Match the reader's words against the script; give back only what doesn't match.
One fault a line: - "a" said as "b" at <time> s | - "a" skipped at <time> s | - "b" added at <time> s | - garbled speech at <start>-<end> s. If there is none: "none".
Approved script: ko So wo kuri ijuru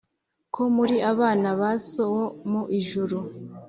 - "muri abana ba" added at 0.8 s
- "kuri" said as "mu" at 2.5 s